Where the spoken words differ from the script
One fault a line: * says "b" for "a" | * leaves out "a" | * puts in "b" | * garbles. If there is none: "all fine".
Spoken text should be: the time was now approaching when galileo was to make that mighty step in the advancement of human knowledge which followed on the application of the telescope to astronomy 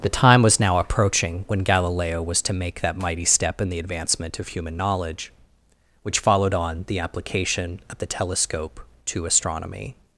all fine